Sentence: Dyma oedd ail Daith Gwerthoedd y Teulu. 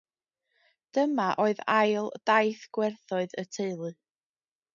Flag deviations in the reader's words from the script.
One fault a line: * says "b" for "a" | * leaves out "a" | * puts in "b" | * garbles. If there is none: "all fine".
all fine